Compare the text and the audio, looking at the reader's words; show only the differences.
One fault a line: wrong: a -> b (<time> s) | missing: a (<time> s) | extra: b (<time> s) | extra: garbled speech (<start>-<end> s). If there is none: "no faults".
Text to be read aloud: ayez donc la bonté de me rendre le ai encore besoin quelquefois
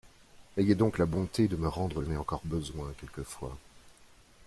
no faults